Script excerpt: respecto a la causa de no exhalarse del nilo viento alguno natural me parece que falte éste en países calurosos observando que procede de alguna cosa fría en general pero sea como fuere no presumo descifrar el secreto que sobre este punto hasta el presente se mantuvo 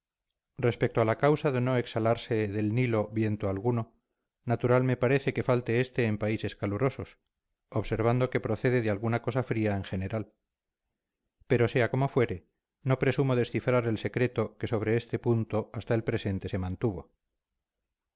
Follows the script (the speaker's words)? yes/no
yes